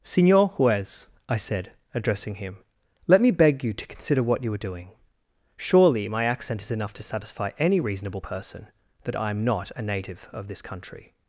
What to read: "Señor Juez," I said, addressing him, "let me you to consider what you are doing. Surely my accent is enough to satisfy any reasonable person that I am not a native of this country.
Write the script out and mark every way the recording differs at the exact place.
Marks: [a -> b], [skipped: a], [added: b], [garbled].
"Señor Juez," I said, addressing him, "let me [added: beg] you to consider what you are doing. Surely my accent is enough to satisfy any reasonable person that I am not a native of this country.